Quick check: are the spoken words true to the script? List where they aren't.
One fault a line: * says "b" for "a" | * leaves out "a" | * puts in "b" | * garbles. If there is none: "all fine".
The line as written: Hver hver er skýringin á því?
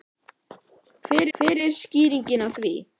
all fine